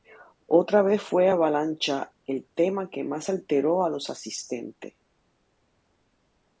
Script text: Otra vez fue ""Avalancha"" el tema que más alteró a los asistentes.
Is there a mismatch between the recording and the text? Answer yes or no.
no